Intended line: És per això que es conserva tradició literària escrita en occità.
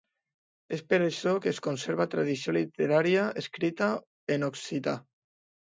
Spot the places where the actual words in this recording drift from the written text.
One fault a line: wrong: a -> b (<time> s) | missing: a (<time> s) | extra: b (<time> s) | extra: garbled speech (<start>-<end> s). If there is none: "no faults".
no faults